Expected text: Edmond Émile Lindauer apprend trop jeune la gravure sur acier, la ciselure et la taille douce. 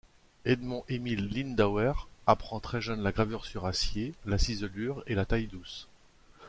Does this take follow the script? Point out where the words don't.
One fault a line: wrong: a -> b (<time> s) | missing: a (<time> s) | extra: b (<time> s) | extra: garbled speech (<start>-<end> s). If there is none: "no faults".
wrong: trop -> très (2.6 s)